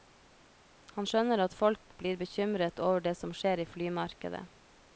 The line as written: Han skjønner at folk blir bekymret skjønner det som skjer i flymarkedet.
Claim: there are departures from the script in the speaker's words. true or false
true